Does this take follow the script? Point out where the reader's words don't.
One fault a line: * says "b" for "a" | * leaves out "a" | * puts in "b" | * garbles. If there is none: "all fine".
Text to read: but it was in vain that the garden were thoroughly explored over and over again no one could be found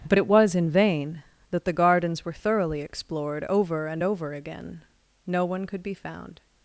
* says "gardens" for "garden"